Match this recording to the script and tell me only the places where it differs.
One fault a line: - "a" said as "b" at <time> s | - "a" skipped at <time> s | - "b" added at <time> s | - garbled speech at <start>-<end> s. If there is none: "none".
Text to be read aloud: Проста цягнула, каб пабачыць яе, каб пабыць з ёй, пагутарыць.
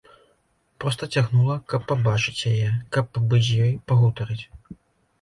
none